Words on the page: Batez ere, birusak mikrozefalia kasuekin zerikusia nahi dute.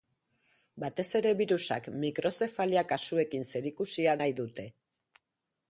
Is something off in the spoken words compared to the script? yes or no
no